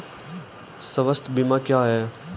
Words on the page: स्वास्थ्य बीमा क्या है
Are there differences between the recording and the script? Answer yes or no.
no